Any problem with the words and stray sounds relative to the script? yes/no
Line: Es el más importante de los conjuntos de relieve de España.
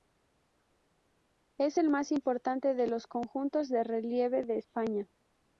no